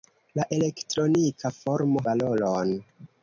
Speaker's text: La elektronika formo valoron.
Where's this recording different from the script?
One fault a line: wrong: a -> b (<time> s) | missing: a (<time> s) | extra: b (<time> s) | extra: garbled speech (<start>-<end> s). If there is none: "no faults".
no faults